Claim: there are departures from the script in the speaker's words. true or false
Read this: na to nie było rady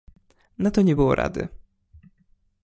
false